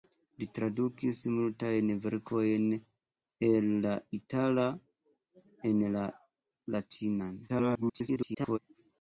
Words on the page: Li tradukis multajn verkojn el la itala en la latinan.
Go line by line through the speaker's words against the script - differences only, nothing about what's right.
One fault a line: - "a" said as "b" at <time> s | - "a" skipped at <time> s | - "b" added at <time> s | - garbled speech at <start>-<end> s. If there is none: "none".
- garbled speech at 7.5-8.6 s